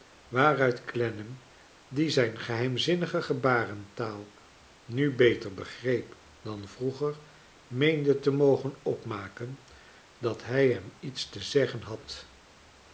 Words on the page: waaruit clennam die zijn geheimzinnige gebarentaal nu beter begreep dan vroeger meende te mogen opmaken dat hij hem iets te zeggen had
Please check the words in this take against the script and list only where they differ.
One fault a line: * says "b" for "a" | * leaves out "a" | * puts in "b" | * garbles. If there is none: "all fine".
all fine